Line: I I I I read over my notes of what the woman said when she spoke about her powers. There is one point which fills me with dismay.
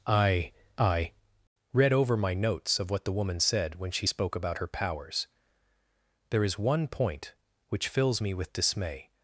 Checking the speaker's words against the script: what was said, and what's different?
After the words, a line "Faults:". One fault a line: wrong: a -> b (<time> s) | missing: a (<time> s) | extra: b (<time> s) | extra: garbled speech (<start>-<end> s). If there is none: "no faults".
I I read over my notes of what the woman said when she spoke about her powers. There is one point which fills me with dismay.
Faults:
missing: I I (1.1 s)